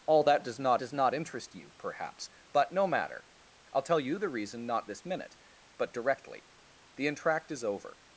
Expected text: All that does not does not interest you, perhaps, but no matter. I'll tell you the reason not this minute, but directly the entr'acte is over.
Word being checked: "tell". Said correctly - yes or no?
yes